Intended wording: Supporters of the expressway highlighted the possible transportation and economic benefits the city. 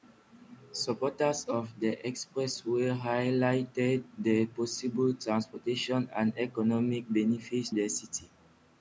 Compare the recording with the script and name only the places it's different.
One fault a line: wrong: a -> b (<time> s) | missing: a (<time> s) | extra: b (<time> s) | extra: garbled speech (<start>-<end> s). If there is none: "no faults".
no faults